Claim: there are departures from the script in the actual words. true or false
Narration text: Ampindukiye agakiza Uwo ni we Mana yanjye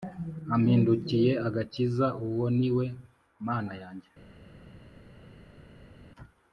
false